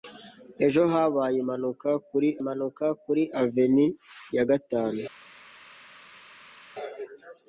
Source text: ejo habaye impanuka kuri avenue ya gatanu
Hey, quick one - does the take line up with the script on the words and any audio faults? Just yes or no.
no